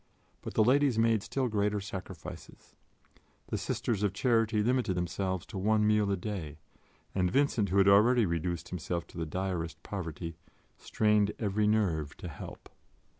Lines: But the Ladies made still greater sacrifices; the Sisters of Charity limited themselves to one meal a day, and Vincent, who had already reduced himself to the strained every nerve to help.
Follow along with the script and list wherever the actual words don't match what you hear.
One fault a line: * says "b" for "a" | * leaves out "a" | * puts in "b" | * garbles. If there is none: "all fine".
* puts in "direst poverty"